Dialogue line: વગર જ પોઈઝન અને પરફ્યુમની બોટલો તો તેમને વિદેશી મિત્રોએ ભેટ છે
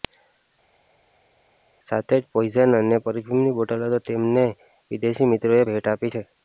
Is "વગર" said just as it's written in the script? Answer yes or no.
no